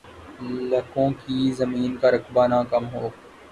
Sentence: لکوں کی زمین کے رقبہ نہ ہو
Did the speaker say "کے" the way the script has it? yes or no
no